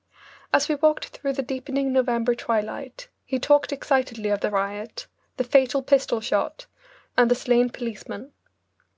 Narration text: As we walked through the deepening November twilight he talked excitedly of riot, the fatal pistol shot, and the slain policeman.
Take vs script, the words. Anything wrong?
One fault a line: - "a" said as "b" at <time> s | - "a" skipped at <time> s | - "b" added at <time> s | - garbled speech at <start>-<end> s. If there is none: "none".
- "the" added at 4.4 s